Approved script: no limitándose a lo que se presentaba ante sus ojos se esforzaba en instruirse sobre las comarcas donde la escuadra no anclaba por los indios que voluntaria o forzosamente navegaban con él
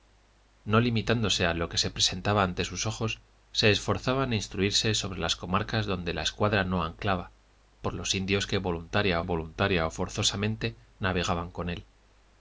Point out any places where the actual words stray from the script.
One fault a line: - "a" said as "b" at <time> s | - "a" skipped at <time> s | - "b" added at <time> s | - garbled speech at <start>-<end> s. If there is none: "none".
- "voluntaria" added at 9.2 s